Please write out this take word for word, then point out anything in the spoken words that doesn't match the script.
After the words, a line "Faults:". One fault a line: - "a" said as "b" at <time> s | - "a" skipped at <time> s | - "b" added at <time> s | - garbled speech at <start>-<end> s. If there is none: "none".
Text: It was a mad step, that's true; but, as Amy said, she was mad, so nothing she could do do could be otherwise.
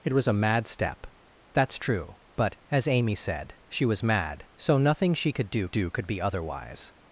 It was a mad step, that's true; but, as Amy said, she was mad, so nothing she could do do could be otherwise.
Faults:
none